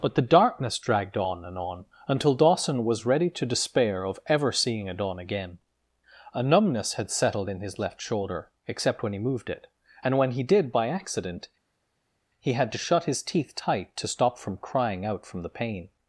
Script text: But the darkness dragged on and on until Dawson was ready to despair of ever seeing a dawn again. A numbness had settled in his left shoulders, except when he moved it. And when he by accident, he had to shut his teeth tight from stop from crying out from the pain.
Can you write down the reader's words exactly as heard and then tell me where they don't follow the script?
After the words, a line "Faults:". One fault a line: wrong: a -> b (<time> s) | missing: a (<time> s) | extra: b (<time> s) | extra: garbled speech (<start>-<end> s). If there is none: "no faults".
But the darkness dragged on and on until Dawson was ready to despair of ever seeing a dawn again. A numbness had settled in his left shoulder, except when he moved it. And when he did by accident, he had to shut his teeth tight to stop from crying out from the pain.
Faults:
wrong: shoulders -> shoulder (8.0 s)
extra: did (10.4 s)
wrong: from -> to (14.0 s)